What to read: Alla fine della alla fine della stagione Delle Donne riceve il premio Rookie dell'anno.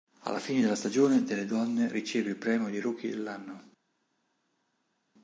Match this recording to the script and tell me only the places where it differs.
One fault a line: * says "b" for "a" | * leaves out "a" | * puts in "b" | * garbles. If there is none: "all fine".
* leaves out "alla fine della"
* puts in "di"